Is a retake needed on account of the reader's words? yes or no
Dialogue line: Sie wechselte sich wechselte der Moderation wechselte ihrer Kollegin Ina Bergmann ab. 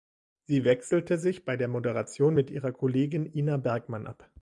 yes